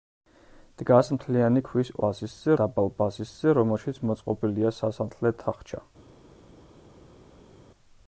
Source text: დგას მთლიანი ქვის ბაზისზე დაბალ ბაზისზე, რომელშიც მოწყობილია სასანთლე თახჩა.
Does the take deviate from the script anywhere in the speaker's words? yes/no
no